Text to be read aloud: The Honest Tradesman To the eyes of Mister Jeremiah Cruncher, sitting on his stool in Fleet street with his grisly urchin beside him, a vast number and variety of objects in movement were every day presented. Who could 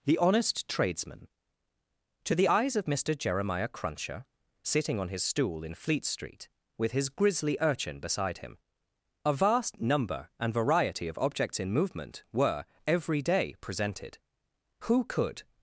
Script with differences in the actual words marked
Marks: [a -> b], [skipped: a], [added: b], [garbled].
The Honest Tradesman To the eyes of Mister Jeremiah Cruncher, sitting on his stool in Fleet street with his grisly urchin beside him, a vast number and variety of objects in movement were every day presented. Who could